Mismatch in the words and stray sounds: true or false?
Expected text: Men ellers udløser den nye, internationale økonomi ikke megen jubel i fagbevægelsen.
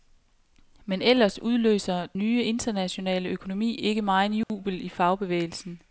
true